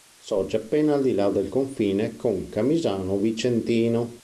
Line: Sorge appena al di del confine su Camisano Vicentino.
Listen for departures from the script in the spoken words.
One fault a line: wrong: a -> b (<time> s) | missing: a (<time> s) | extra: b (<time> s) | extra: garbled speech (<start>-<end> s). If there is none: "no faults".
extra: là (1.1 s)
wrong: su -> con (2.1 s)